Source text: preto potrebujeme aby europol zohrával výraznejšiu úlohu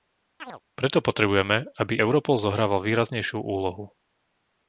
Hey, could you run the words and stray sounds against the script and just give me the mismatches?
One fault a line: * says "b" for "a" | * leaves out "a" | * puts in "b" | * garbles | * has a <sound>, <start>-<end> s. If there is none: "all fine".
* has a chirp, 0.4-0.6 s